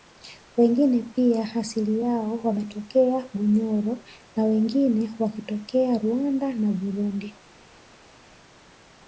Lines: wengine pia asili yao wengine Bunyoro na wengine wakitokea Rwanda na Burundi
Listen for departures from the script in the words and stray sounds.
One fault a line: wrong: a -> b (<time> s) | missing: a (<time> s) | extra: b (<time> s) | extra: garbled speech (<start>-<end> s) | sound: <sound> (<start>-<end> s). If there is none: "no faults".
wrong: wengine -> wametokea (2.4 s)